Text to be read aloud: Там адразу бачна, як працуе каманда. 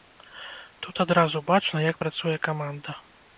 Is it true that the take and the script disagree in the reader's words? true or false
true